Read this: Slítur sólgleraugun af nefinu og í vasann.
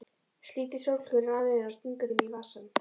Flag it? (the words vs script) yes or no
yes